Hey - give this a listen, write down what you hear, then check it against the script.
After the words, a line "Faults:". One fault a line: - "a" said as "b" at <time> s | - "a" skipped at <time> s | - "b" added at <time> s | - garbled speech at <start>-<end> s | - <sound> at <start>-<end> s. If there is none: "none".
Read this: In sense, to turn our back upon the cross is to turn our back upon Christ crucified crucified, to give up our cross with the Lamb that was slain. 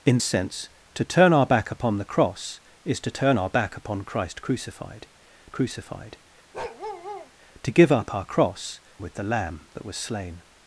In sense, to turn our back upon the cross is to turn our back upon Christ crucified crucified, to give up our cross with the Lamb that was slain.
Faults:
- bark at 6.5-7.3 s